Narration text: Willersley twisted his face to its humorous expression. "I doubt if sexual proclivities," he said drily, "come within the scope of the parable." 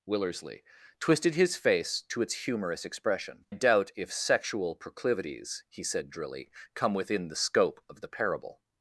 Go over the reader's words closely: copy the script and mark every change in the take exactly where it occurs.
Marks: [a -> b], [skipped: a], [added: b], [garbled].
Willersley twisted his face to its humorous expression. [skipped: "I] doubt if sexual proclivities," he said drily, "come within the scope of the parable."